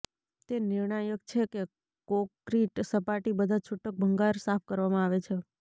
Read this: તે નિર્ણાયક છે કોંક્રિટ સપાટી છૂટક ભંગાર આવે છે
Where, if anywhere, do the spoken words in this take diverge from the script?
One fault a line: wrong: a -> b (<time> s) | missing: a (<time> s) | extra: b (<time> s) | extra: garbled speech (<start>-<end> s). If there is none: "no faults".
extra: કે (1.5 s)
extra: બધા (3.4 s)
extra: સાફ કરવામાં (4.4 s)